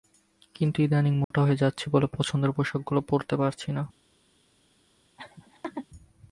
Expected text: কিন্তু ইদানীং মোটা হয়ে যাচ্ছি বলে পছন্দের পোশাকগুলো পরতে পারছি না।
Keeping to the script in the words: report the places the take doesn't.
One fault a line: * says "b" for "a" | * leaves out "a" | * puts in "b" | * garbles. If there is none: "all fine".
all fine